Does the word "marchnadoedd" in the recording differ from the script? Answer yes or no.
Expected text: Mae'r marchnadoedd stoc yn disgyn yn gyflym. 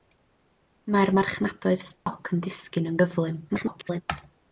no